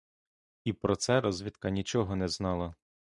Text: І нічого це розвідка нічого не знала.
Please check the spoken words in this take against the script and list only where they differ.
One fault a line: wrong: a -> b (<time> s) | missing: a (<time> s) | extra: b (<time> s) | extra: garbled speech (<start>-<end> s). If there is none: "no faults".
wrong: нічого -> про (0.7 s)